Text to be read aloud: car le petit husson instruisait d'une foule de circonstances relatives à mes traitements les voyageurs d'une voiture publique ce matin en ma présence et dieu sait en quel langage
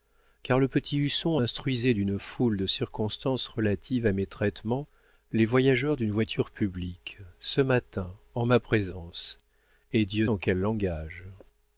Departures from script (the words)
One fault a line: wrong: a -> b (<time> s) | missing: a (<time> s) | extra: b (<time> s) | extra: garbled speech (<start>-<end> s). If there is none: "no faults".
missing: sait (10.3 s)